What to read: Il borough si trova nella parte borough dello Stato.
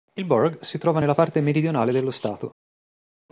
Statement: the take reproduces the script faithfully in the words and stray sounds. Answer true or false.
false